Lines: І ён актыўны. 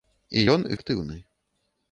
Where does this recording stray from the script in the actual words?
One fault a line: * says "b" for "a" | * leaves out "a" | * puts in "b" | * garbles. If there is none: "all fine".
all fine